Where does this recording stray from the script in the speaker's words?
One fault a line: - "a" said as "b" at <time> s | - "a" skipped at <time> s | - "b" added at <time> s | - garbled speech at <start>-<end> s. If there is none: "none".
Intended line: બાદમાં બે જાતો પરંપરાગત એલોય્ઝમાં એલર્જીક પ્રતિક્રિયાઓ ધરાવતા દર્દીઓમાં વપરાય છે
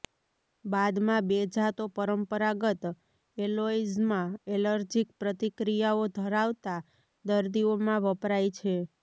none